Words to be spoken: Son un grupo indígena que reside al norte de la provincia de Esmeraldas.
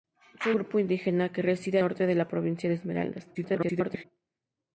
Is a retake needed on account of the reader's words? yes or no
yes